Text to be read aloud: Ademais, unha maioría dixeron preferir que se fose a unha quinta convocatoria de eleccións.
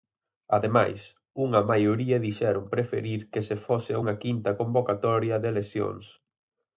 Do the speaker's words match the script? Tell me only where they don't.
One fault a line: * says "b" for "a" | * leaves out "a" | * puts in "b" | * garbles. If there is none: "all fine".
all fine